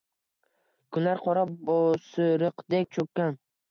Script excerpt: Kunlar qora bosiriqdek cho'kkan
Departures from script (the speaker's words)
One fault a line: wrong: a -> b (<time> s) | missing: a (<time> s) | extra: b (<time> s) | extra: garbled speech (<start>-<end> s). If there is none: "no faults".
no faults